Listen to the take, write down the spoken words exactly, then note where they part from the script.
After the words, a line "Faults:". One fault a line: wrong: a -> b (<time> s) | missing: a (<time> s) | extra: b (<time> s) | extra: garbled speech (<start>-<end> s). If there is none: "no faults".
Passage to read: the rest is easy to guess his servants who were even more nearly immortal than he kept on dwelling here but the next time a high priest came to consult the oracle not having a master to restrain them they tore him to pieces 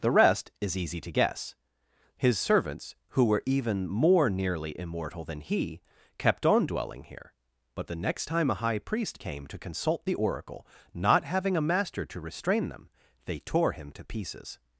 the rest is easy to guess his servants who were even more nearly immortal than he kept on dwelling here but the next time a high priest came to consult the oracle not having a master to restrain them they tore him to pieces
Faults:
no faults